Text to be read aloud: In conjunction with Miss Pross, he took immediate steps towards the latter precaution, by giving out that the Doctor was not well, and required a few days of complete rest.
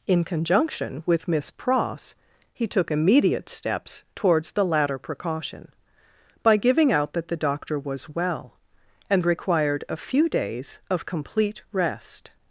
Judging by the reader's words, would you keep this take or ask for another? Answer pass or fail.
fail